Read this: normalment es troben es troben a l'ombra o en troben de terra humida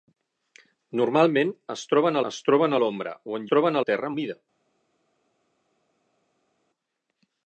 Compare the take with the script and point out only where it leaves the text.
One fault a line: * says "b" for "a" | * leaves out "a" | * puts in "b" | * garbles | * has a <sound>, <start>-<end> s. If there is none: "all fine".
all fine